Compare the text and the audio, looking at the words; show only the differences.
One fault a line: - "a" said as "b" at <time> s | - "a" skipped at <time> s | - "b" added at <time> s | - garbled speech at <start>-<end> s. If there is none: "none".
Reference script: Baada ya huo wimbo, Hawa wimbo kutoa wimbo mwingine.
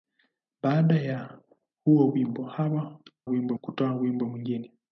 none